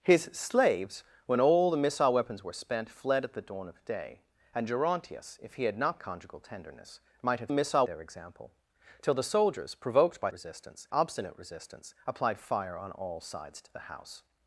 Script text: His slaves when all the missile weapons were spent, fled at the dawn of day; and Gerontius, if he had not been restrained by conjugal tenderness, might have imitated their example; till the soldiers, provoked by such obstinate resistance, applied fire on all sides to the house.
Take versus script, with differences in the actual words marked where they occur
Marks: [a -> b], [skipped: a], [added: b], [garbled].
His slaves when all the missile weapons were spent, fled at the dawn of day; and Gerontius, if he had not [skipped: been restrained by] conjugal tenderness, might have [imitated -> missile] their example; till the soldiers, provoked by [such -> resistance] obstinate resistance, applied fire on all sides to the house.